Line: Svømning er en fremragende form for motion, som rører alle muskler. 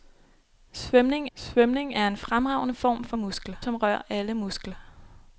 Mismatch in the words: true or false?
true